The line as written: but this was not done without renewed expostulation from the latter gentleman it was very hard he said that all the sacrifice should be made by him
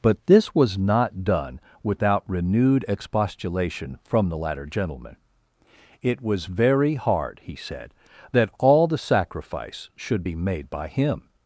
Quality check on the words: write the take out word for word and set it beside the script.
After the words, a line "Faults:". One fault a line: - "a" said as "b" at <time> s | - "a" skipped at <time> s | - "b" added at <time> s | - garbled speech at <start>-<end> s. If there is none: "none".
but this was not done without renewed expostulation from the latter gentleman it was very hard he said that all the sacrifice should be made by him
Faults:
none